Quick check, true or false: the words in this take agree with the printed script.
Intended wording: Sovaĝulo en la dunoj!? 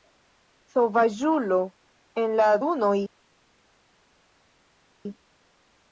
true